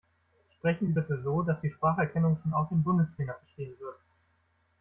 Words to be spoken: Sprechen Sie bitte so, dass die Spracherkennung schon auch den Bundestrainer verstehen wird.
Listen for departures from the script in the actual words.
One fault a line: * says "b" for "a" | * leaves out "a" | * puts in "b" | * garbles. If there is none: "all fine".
all fine